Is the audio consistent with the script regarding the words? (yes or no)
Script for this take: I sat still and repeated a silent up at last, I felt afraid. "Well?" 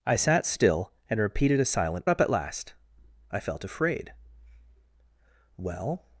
yes